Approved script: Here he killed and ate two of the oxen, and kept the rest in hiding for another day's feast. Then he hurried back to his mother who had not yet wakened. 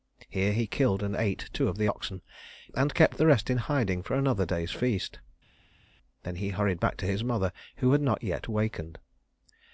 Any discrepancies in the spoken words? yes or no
no